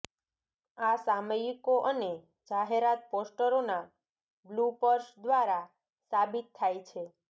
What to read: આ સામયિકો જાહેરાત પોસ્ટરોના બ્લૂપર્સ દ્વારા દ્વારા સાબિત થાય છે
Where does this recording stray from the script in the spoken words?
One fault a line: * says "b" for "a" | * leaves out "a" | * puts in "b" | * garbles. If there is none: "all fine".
* puts in "અને"
* leaves out "દ્વારા"